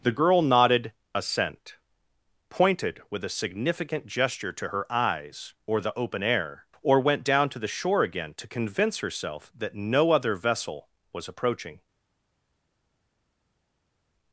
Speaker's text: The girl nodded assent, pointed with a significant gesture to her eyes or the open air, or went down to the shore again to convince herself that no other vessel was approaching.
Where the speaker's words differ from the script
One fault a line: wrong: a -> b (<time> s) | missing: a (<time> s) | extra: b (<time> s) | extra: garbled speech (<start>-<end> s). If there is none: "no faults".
no faults